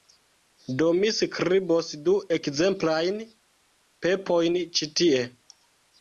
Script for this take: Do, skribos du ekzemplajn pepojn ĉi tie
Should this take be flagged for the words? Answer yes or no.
yes